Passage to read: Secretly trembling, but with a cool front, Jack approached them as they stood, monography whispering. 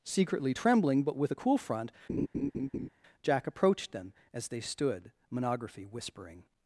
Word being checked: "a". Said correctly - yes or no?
yes